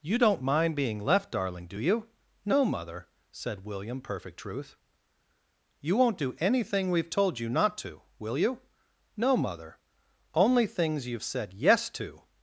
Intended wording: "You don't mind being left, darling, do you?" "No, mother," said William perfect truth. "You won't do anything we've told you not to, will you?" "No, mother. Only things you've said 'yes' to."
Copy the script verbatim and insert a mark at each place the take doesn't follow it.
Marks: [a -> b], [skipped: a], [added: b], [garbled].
"You don't mind being left, darling, do you?" "No, mother," said William perfect truth. "You won't do anything we've told you not to, will you?" "No, mother. Only things you've said 'yes' to."